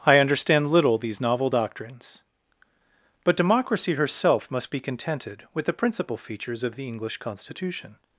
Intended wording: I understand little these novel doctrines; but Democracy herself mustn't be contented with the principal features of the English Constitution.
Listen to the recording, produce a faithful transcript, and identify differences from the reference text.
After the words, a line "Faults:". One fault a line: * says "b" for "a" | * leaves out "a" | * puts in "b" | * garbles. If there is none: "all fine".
I understand little these novel doctrines; but Democracy herself must be contented with the principal features of the English Constitution.
Faults:
* says "must" for "mustn't"